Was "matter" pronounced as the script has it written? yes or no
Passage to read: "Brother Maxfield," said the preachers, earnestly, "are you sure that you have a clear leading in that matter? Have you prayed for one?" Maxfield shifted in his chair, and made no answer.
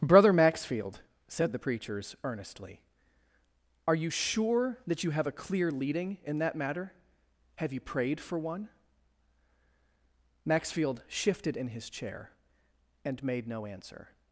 yes